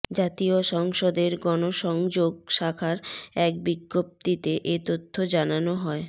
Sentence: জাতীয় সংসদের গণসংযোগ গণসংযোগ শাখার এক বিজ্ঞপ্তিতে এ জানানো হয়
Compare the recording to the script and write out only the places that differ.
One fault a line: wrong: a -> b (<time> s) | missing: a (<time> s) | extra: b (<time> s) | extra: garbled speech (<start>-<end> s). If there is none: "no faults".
missing: গণসংযোগ (2.3 s)
extra: তথ্য (4.9 s)